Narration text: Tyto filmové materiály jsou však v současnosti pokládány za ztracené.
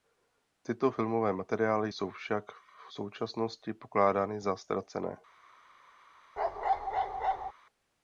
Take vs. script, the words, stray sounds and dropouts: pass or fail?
fail